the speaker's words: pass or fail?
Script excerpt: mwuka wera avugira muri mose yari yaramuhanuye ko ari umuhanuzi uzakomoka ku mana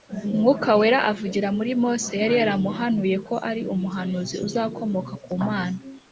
pass